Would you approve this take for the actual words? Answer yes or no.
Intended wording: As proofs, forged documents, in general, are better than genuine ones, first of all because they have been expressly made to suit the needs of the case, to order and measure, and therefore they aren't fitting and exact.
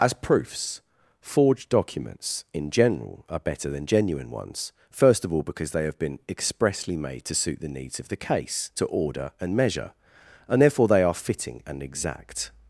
no